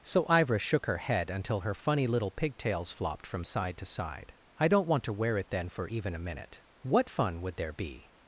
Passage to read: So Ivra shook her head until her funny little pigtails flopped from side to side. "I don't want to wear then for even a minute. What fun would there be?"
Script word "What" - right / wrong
right